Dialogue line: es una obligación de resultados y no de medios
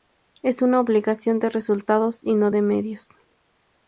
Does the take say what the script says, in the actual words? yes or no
yes